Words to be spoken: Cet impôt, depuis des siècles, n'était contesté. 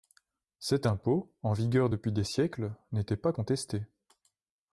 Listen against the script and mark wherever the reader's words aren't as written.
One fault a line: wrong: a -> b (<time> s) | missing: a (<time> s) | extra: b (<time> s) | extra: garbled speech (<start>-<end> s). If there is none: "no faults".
extra: en vigueur (1.4 s)
extra: pas (3.2 s)